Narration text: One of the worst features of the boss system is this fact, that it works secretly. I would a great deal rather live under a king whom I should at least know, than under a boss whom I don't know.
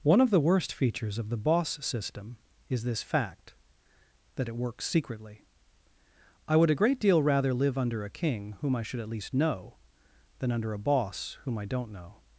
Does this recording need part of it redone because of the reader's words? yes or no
no